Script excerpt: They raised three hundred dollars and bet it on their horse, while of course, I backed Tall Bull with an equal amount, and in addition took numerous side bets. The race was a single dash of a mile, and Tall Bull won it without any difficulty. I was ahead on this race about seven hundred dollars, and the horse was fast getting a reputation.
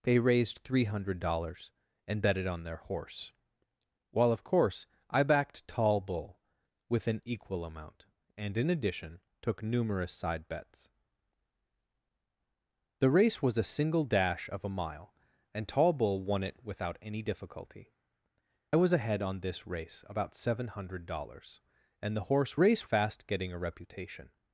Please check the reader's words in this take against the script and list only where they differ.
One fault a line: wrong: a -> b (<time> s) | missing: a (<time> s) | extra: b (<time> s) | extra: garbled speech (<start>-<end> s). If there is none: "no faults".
missing: I (17.9 s)
wrong: was -> race (22.6 s)